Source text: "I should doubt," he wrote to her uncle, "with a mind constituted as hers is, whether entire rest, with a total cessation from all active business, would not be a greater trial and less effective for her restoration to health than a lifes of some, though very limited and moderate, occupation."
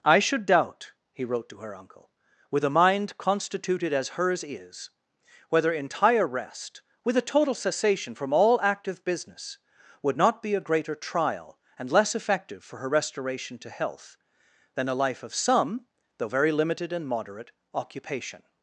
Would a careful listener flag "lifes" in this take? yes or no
yes